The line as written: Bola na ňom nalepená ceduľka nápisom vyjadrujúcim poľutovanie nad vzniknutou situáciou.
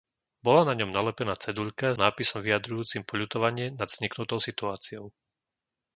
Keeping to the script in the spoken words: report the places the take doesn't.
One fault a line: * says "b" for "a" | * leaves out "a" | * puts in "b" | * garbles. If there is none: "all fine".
all fine